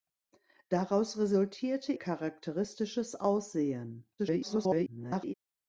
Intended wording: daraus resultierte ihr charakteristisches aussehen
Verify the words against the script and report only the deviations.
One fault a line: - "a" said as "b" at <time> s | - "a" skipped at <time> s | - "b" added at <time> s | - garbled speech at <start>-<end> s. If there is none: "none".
- "ihr" skipped at 1.9 s
- garbled speech at 4.2-5.3 s